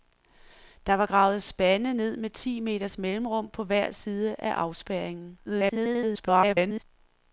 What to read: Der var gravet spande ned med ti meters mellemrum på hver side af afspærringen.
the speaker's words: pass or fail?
fail